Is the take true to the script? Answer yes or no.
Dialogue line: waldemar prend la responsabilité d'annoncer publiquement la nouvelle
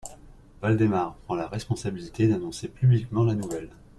yes